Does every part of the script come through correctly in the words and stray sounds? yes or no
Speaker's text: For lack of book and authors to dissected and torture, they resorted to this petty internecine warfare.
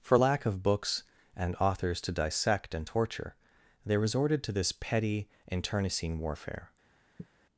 no